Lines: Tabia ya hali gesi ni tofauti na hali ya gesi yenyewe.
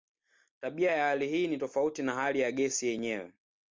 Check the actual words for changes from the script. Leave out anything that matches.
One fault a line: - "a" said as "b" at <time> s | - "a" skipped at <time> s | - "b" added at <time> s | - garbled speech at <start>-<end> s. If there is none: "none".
- "gesi" said as "hii" at 1.3 s